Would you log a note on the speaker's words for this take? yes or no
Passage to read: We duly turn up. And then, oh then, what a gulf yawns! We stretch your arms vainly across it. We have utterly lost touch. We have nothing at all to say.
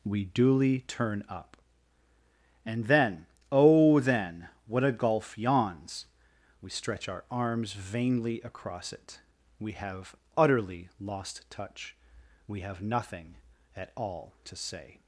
yes